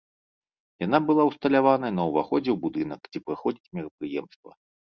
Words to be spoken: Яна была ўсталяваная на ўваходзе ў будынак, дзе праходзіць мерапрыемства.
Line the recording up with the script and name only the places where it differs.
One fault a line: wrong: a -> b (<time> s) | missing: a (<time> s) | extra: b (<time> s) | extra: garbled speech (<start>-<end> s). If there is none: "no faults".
no faults